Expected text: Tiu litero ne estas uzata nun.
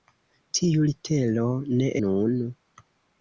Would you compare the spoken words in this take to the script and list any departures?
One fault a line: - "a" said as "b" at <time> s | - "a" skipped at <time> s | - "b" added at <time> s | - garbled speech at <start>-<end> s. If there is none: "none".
- "estas uzata" skipped at 1.9 s